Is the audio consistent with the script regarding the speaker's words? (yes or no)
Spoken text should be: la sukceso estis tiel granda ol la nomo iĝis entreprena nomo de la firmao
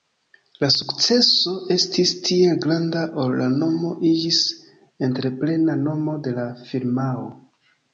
yes